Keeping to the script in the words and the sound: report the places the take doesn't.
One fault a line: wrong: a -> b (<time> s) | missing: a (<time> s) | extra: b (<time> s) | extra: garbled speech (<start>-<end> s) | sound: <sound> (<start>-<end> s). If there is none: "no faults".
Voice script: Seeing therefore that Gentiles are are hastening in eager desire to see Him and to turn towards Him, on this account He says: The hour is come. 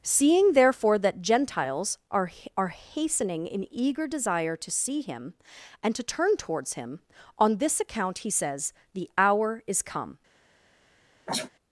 sound: sneeze (11.3-11.5 s)